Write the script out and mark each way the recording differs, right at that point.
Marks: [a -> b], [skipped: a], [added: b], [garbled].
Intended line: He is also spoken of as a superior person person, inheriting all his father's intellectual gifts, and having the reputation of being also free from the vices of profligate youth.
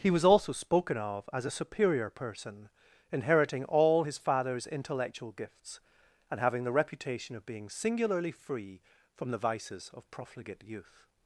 He [is -> was] also spoken of as a superior person [skipped: person,] inheriting all his father's intellectual gifts, and having the reputation of being [also -> singularly] free from the vices of profligate youth.